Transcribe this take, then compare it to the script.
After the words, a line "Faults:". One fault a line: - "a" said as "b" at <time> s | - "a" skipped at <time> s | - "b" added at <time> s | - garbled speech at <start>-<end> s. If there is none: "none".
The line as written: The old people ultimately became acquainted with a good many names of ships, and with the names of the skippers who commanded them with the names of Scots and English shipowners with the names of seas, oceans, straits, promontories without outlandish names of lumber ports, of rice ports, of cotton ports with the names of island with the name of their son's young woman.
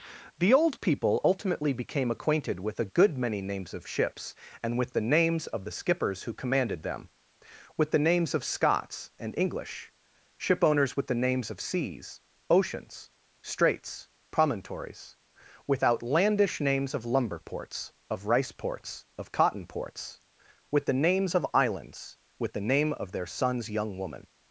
The old people ultimately became acquainted with a good many names of ships, and with the names of the skippers who commanded them with the names of Scots and English shipowners with the names of seas, oceans, straits, promontories with outlandish names of lumber ports, of rice ports, of cotton ports with the names of islands with the name of their son's young woman.
Faults:
- "without" said as "with" at 15.7 s
- "island" said as "islands" at 21.5 s